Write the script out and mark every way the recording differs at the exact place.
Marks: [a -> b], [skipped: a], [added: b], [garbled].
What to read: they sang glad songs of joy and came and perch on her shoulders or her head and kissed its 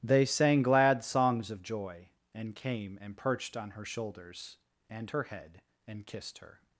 they sang glad songs of joy and came and [perch -> perched] on her shoulders [or -> and] her head and kissed [its -> her]